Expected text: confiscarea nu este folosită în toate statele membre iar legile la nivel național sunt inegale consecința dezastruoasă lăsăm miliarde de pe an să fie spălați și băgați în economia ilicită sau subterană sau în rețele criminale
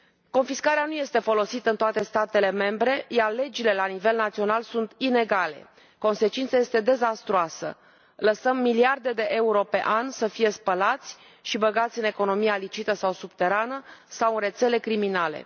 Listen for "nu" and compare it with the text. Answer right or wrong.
right